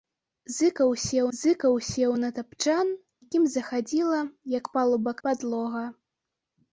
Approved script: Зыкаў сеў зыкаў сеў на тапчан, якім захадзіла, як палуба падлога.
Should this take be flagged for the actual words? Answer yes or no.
no